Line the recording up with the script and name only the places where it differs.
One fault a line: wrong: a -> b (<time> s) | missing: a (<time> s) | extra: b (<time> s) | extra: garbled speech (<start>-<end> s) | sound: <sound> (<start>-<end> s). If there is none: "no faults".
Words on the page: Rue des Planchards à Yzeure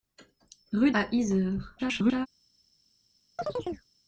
missing: des Planchards (0.9 s)
extra: garbled speech (1.8-2.3 s)
sound: chirp (3.4-3.9 s)